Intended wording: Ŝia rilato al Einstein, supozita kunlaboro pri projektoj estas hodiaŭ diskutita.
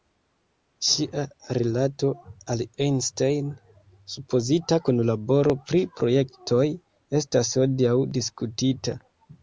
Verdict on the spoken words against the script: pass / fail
pass